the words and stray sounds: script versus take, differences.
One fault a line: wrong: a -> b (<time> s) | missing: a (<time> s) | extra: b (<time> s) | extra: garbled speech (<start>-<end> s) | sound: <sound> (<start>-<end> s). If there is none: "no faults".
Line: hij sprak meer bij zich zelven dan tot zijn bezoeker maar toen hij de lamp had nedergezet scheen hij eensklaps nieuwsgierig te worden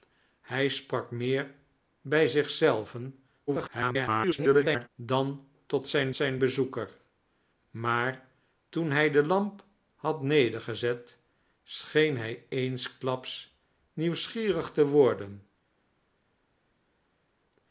extra: garbled speech (3.5-4.9 s)
extra: zijn (6.1 s)